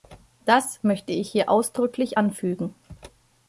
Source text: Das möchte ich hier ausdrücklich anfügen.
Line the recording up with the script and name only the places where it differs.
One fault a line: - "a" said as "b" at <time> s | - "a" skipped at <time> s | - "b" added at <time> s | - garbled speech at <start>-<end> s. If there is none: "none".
none